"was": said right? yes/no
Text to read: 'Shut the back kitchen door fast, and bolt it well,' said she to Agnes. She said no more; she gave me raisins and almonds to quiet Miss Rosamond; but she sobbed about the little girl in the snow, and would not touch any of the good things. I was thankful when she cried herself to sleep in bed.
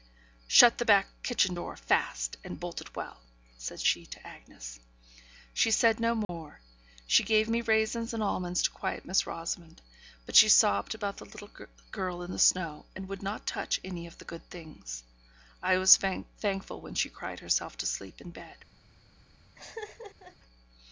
yes